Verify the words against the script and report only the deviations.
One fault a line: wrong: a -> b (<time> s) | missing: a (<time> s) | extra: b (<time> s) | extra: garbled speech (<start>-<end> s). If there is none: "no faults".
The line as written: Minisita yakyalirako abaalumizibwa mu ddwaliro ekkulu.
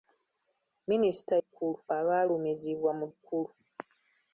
wrong: yakyalirako -> ekkulu (1.4 s)
missing: ddwaliro (3.0 s)